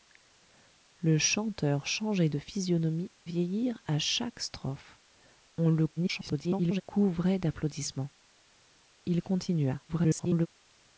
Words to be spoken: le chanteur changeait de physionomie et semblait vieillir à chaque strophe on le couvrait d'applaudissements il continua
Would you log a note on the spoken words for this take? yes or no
yes